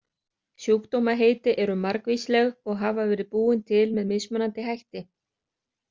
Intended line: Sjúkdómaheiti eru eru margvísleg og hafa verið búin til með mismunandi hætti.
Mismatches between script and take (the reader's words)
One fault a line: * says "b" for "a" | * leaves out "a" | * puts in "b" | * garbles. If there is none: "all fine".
* leaves out "eru"